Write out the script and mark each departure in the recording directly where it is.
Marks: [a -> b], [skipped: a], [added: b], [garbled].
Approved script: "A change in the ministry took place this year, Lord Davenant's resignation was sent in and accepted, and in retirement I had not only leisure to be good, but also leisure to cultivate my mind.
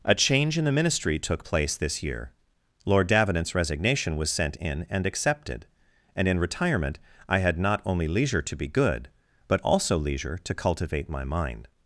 "A change in the ministry took place this year, Lord Davenant's resignation was sent in and accepted, and in retirement I had not only leisure to be good, but also leisure to cultivate my mind.